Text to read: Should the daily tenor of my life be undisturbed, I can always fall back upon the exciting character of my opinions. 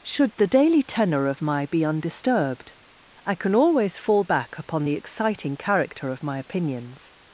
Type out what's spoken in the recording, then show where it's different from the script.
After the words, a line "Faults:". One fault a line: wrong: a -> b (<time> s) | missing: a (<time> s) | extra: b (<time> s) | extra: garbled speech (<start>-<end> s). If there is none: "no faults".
Should the daily tenor of my be undisturbed, I can always fall back upon the exciting character of my opinions.
Faults:
missing: life (1.7 s)